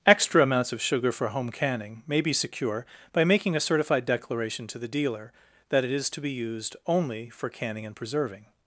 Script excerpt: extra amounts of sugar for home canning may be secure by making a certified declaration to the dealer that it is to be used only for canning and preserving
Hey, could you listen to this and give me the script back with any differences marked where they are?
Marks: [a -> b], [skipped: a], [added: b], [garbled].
extra amounts of sugar for home canning may be secure by making a certified declaration to the dealer that it is to be used only for canning and preserving